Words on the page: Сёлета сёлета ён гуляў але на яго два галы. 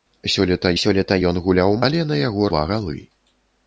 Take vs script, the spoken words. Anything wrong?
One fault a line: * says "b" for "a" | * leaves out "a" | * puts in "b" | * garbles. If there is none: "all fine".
all fine